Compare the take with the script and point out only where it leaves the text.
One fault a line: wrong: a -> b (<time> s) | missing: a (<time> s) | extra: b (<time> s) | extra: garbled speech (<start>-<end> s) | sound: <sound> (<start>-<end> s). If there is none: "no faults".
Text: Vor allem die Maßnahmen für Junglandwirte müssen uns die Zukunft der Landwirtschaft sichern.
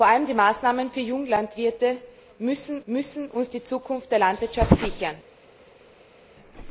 extra: müssen (2.9 s)